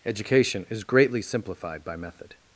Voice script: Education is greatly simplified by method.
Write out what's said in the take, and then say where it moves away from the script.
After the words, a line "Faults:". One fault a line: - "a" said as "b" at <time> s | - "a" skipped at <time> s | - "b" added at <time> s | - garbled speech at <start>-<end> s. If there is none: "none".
Education is greatly simplified by method.
Faults:
none